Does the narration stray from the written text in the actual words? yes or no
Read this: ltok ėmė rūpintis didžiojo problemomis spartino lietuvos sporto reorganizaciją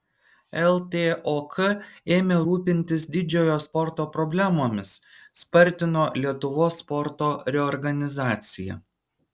yes